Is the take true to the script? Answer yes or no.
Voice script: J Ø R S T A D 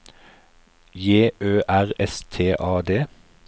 yes